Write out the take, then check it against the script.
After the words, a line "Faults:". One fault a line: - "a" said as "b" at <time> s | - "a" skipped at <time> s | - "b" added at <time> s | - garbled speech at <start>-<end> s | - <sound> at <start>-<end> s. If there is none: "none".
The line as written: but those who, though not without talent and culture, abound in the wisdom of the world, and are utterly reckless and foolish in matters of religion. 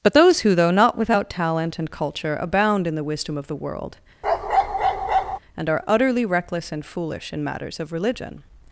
but those who, though not without talent and culture, abound in the wisdom of the world, and are utterly reckless and foolish in matters of religion.
Faults:
- bark at 4.2-5.4 s